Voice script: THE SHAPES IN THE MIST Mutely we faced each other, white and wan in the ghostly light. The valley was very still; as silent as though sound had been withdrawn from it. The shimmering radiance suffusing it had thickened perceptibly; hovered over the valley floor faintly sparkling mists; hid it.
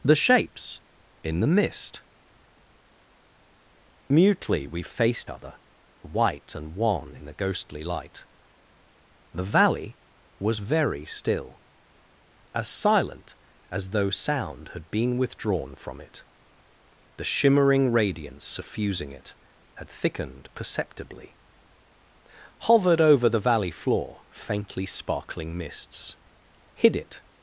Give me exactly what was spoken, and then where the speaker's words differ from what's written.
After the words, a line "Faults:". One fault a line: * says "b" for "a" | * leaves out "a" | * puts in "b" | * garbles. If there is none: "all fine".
THE SHAPES IN THE MIST Mutely we faced other, white and wan in the ghostly light. The valley was very still; as silent as though sound had been withdrawn from it. The shimmering radiance suffusing it had thickened perceptibly; hovered over the valley floor faintly sparkling mists; hid it.
Faults:
* leaves out "each"